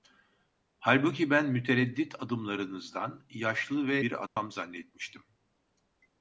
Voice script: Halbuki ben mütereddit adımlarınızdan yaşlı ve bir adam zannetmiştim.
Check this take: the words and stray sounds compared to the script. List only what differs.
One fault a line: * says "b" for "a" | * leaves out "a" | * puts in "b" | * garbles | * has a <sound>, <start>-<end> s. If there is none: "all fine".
* has a dropout, 4.3-4.4 s